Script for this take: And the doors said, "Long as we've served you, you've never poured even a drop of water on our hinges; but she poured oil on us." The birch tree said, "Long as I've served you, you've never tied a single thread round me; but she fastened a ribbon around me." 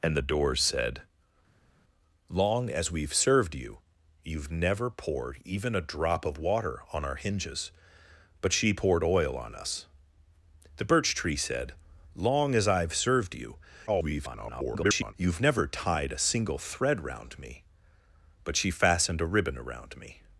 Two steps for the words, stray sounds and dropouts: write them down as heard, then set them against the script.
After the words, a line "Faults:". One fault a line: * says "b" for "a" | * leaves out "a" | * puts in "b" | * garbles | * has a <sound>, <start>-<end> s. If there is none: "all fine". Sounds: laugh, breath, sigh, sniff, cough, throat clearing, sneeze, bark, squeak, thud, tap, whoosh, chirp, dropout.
And the doors said, "Long as we've served you, you've never poured even a drop of water on our hinges; but she poured oil on us." The birch tree said, "Long as I've served you, [garbled] you've never tied a single thread round me; but she fastened a ribbon around me."
Faults:
* garbles